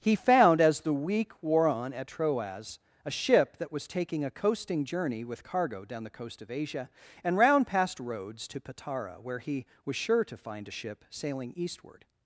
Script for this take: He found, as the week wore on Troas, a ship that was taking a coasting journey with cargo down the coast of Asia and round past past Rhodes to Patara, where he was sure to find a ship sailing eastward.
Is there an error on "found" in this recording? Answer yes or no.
no